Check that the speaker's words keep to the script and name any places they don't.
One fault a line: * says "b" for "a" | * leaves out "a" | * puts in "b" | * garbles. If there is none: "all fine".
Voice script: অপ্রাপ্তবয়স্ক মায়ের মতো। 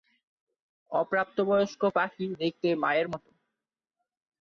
* puts in "পাখি দেখতে"